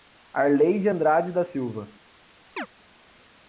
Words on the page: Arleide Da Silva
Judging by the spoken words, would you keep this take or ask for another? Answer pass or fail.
fail